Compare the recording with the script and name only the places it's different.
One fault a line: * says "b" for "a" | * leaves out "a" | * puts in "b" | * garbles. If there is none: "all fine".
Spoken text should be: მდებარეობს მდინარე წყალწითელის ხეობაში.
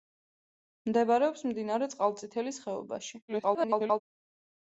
* garbles